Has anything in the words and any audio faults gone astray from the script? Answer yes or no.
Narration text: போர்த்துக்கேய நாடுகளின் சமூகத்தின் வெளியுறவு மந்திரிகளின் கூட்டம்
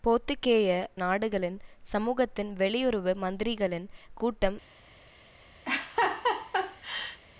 yes